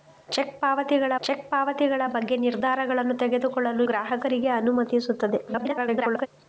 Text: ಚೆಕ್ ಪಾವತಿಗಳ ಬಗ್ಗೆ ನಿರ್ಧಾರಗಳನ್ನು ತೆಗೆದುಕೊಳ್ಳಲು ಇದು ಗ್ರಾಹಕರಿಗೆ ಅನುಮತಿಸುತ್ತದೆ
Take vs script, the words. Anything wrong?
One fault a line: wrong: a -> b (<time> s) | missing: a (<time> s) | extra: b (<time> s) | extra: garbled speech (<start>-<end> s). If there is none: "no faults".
extra: ಚೆಕ್ ಪಾವತಿಗಳ (1.2 s)
missing: ಇದು (3.8 s)
extra: garbled speech (5.5-6.3 s)